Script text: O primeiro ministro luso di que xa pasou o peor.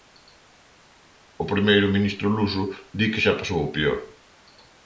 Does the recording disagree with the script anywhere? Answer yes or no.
no